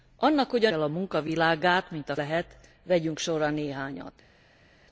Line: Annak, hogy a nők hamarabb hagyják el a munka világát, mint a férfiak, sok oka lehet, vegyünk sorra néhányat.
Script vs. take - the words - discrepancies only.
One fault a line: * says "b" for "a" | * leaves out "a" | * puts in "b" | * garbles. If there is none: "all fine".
* leaves out "nők hamarabb hagyják"
* leaves out "férfiak sok oka"